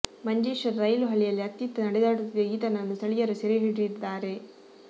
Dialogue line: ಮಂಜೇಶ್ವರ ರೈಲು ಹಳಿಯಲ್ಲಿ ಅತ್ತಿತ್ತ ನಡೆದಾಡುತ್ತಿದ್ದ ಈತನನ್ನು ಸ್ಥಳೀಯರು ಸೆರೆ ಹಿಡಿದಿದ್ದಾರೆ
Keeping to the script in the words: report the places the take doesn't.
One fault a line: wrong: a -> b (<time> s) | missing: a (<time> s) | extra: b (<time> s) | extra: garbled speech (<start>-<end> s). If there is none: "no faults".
no faults